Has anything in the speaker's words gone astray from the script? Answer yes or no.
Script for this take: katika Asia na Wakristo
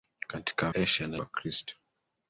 no